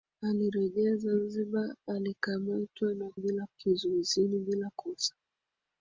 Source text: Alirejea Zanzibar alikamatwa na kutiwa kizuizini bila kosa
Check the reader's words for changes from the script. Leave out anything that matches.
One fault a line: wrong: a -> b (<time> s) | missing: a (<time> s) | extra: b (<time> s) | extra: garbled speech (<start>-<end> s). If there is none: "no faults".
wrong: kutiwa -> bila (3.1 s)